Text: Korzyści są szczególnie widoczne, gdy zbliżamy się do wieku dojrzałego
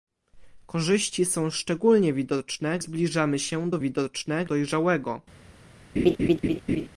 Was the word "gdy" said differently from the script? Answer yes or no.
yes